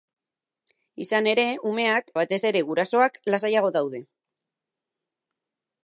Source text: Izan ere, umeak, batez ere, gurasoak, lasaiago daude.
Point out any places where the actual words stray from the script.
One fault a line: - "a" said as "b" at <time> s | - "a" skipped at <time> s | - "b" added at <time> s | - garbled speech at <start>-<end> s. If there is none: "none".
none